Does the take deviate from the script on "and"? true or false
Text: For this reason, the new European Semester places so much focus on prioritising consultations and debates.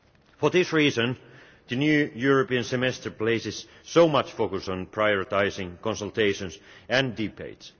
false